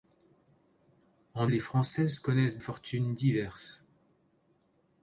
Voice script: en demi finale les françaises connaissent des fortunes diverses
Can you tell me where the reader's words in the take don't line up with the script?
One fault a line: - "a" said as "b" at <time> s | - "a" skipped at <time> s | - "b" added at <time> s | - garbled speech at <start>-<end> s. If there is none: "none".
- "demi finale" skipped at 1.4 s
- "des" skipped at 2.6 s